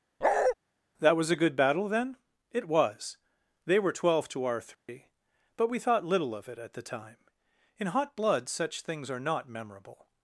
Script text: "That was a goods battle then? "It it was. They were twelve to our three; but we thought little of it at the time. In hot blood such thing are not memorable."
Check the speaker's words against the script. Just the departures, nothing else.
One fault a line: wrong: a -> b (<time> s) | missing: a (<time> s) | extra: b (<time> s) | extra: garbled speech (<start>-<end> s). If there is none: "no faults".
wrong: goods -> good (1.4 s)
missing: it (2.7 s)
wrong: thing -> things (8.8 s)